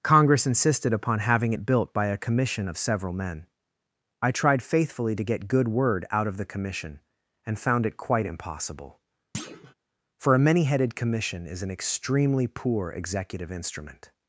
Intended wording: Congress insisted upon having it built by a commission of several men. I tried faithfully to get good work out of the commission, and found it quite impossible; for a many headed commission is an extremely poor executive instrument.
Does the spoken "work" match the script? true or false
false